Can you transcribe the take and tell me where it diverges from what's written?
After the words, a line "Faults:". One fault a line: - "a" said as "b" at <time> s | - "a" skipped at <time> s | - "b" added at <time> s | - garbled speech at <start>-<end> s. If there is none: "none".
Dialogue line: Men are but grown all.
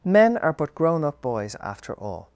Men are but grown up boys after all.
Faults:
- "up boys after" added at 1.0 s